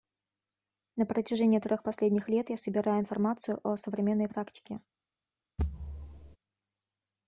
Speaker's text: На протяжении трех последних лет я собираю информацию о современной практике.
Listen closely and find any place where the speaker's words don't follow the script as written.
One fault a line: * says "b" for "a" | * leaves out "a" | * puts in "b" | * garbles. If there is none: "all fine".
all fine